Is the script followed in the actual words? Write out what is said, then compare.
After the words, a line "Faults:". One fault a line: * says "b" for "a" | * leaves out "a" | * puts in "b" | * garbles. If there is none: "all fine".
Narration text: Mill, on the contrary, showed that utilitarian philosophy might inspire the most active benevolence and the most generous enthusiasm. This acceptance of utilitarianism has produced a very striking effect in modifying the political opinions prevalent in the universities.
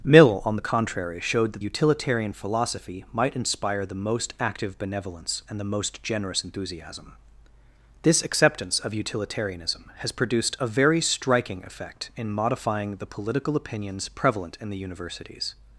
Mill, on the contrary, showed that utilitarian philosophy might inspire the most active benevolence and the most generous enthusiasm. This acceptance of utilitarianism has produced a very striking effect in modifying the political opinions prevalent in the universities.
Faults:
all fine